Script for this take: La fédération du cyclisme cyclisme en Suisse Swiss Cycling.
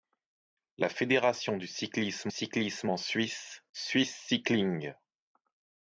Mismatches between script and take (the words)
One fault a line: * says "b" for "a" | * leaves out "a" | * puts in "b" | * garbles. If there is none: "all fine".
all fine